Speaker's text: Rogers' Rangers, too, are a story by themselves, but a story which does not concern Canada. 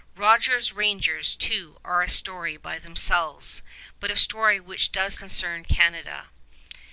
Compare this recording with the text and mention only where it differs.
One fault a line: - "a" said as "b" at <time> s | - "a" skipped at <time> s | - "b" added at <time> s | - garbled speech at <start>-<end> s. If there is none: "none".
- "not" skipped at 5.2 s